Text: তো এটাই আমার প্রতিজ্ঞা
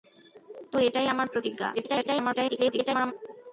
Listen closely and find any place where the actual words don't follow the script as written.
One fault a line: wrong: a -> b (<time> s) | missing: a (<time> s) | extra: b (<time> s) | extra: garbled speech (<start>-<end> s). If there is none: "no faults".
extra: garbled speech (1.8-3.1 s)